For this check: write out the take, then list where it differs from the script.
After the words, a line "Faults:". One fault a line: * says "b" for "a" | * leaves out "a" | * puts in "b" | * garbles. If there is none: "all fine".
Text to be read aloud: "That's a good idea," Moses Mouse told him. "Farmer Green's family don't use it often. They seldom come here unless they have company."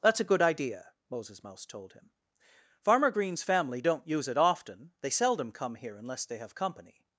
"That's a good idea," Moses Mouse told him. "Farmer Green's family don't use it often. They seldom come here unless they have company."
Faults:
all fine